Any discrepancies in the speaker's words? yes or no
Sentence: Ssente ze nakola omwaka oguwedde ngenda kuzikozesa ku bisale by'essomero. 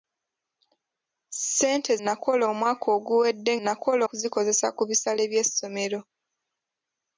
yes